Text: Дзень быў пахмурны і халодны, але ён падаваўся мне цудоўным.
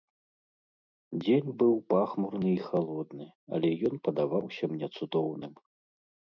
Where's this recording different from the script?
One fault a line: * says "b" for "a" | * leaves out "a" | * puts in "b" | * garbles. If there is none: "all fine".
all fine